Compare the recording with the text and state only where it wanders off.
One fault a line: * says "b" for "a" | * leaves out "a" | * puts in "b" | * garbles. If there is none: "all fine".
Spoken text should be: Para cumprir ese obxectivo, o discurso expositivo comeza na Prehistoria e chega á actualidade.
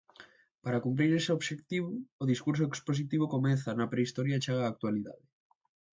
all fine